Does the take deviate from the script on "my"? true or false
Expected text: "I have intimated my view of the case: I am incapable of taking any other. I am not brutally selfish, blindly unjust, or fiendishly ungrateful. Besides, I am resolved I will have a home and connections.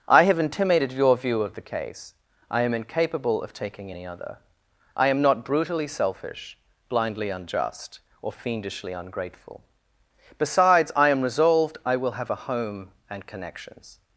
true